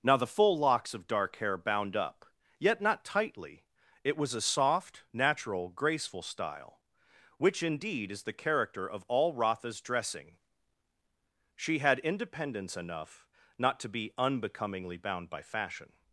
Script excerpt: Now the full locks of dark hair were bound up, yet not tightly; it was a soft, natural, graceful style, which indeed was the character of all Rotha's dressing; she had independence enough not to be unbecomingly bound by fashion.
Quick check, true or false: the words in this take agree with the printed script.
false